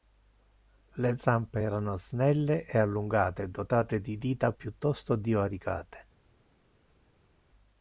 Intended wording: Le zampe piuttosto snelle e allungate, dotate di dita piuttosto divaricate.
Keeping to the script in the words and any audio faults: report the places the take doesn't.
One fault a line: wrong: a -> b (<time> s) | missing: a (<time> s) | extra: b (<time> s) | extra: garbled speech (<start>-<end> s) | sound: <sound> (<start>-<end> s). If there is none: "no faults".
wrong: piuttosto -> erano (1.6 s)